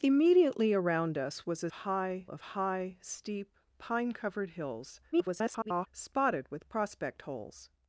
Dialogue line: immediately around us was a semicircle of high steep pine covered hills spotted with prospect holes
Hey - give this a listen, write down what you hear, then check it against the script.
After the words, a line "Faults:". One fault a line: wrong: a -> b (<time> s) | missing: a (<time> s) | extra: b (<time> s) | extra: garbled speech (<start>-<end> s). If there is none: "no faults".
immediately around us was a high of high steep pine covered hills [garbled] spotted with prospect holes
Faults:
wrong: semicircle -> high (1.7 s)
extra: garbled speech (5.1-5.9 s)